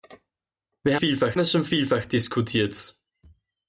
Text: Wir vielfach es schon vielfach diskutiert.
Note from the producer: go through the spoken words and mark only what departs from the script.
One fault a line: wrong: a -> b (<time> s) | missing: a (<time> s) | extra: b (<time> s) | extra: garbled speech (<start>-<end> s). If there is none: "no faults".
no faults